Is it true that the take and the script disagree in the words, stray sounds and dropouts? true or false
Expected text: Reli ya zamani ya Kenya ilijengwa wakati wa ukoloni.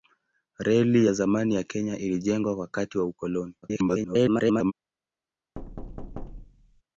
true